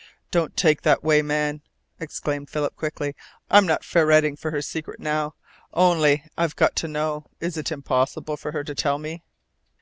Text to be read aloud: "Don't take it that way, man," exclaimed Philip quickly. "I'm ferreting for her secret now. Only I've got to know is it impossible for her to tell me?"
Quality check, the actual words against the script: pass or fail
fail